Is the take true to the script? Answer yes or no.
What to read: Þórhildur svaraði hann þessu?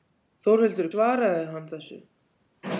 yes